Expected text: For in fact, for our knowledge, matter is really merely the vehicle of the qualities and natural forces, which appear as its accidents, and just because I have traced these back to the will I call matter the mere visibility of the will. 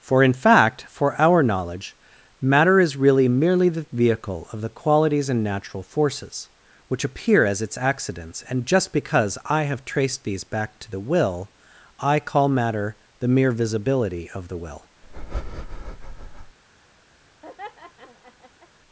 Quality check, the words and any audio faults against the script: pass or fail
fail